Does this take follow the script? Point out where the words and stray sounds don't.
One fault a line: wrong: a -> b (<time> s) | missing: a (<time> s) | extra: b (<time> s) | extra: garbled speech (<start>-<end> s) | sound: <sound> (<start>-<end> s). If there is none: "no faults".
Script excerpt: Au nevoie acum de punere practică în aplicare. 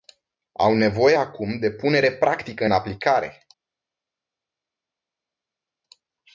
no faults